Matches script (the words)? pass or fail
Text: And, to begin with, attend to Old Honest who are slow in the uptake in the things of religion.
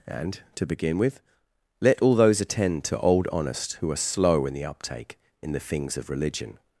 fail